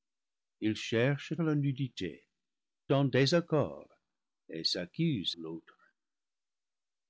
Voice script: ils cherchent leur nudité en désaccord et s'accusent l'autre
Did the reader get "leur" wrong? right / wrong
right